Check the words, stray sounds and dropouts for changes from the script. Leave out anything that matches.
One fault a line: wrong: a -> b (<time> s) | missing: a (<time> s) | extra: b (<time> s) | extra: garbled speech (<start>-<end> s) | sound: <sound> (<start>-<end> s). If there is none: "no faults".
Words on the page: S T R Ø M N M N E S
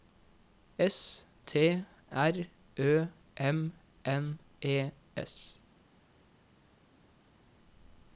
missing: M N (4.4 s)